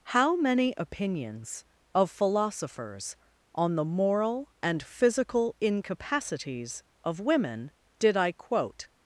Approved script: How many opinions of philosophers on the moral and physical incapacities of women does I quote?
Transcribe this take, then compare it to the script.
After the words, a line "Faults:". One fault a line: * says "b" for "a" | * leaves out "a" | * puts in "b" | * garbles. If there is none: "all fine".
How many opinions of philosophers on the moral and physical incapacities of women did I quote?
Faults:
* says "did" for "does"